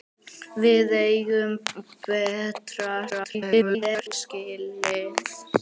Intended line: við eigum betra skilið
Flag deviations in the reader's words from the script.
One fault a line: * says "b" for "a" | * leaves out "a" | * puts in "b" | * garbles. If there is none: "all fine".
* garbles